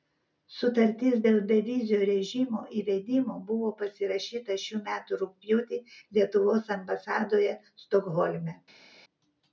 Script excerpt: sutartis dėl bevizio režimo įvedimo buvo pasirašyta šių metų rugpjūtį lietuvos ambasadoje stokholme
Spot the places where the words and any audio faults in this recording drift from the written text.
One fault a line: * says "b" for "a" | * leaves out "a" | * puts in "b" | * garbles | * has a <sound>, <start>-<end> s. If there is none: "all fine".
all fine